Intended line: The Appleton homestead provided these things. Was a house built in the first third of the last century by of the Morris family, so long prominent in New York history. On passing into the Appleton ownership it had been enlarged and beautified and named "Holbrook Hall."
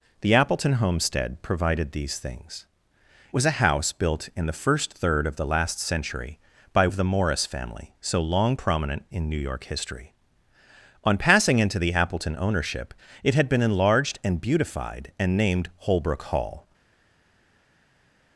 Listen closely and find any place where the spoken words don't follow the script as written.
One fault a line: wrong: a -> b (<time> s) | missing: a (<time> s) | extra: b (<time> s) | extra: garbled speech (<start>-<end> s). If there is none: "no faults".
no faults